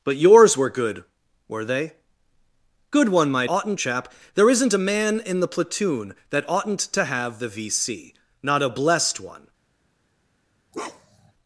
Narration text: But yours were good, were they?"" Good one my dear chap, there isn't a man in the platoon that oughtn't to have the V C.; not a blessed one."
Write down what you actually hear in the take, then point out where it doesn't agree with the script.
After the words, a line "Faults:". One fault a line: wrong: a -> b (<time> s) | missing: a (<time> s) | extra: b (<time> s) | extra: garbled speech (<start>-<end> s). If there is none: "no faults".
But yours were good, were they?"" Good one my oughtn't chap, there isn't a man in the platoon that oughtn't to have the V C.; not a blessed one."
Faults:
wrong: dear -> oughtn't (3.5 s)